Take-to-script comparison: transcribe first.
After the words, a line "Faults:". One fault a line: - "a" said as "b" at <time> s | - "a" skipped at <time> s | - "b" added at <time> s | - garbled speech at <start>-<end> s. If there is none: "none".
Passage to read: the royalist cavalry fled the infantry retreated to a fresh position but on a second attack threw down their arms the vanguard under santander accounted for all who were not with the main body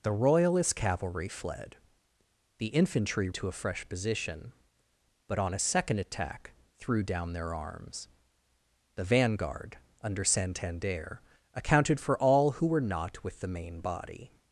the royalist cavalry fled the infantry to a fresh position but on a second attack threw down their arms the vanguard under santander accounted for all who were not with the main body
Faults:
- "retreated" skipped at 3.3 s